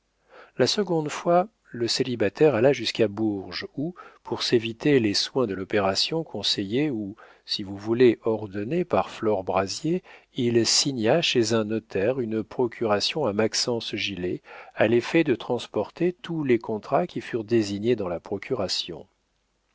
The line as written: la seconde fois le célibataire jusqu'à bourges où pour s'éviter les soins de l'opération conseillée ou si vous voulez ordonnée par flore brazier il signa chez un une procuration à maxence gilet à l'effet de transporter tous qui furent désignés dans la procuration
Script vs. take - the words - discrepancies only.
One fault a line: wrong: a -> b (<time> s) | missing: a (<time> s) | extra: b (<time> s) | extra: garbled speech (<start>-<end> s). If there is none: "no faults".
extra: alla (2.5 s)
extra: notaire (11.7 s)
extra: les contrats (16.4 s)